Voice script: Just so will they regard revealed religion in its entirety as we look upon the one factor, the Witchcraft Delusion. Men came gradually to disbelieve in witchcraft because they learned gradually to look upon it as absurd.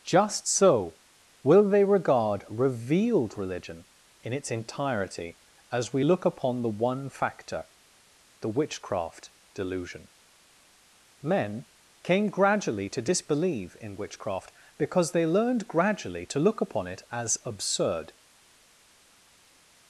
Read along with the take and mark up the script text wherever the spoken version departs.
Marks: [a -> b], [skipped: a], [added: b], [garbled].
Just so will they regard revealed religion in its entirety as we look upon the one factor, the Witchcraft Delusion. Men came gradually to disbelieve in witchcraft because they learned gradually to look upon it as absurd.